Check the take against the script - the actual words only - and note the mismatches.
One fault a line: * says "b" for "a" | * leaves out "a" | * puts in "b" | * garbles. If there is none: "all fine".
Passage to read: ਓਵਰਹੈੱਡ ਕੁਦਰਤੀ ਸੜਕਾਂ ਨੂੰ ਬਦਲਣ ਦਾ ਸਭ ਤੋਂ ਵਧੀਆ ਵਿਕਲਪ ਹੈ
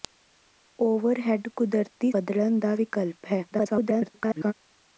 * leaves out "ਸੜਕਾਂ ਨੂੰ"
* leaves out "ਸਭ ਤੋਂ ਵਧੀਆ"
* garbles